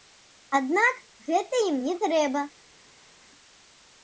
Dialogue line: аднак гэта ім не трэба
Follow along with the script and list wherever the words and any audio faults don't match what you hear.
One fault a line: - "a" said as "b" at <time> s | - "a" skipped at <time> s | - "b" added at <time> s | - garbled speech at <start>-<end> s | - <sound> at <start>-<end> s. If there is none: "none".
none